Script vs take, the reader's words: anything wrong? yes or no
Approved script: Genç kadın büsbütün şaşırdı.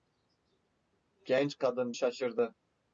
yes